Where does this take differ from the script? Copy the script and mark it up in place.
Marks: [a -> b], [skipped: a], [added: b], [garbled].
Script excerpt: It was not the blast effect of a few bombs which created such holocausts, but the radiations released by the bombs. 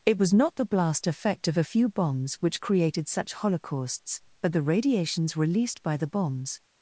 It was not the blast effect of a few bombs which created such holocausts, but the radiations released by the bombs.